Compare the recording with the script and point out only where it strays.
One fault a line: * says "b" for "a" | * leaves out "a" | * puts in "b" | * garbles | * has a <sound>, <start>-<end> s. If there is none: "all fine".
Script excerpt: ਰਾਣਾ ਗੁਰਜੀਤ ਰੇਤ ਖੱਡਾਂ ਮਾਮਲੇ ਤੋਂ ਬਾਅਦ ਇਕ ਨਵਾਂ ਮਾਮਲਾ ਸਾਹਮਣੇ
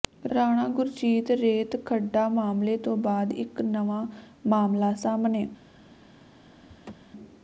* has a laugh, 6.7-6.9 s